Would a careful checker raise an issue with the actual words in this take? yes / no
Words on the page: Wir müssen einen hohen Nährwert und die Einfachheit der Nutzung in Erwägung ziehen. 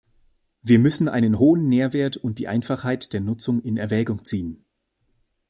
no